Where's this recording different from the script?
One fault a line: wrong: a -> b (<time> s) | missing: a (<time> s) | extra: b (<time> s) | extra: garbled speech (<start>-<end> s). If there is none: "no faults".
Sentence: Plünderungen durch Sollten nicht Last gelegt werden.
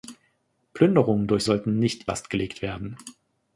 no faults